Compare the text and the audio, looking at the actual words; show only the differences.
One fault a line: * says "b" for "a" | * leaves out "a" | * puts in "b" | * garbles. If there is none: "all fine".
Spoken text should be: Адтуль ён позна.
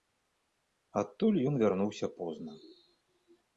* puts in "вярнуўся"